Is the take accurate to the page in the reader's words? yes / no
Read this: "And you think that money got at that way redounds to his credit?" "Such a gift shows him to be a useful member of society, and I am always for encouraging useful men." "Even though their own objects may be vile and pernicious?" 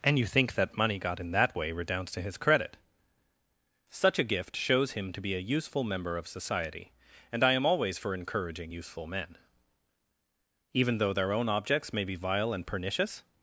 no